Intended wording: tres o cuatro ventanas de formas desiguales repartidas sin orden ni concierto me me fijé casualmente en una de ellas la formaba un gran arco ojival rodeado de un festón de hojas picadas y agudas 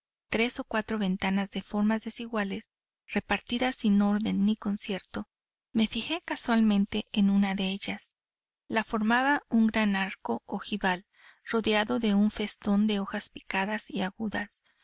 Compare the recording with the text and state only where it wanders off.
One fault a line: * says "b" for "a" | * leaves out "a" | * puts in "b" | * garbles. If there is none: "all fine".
* leaves out "me"